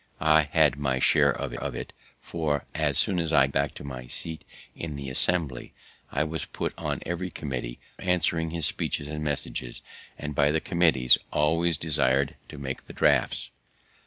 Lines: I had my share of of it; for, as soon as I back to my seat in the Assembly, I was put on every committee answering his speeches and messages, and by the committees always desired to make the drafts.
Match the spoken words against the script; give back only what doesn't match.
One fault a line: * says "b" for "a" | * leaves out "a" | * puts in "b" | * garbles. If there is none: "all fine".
all fine